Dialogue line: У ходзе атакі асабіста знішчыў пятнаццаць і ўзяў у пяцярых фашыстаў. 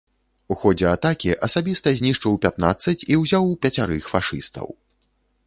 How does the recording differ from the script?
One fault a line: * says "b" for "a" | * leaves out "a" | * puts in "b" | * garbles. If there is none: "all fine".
all fine